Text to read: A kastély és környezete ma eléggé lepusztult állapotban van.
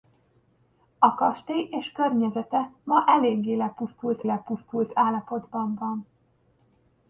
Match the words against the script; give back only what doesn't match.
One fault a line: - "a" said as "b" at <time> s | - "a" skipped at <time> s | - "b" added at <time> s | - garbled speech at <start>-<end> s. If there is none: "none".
- "lepusztult" added at 4.2 s